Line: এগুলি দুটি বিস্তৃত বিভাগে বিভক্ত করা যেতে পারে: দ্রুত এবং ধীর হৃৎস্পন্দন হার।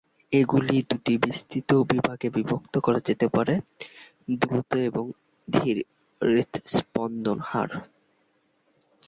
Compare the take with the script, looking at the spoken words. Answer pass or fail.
pass